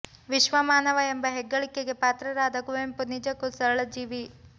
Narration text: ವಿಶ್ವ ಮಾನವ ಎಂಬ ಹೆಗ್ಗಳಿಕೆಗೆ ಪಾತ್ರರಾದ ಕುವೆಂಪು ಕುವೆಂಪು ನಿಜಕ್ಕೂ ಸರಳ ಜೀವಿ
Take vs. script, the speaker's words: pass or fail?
fail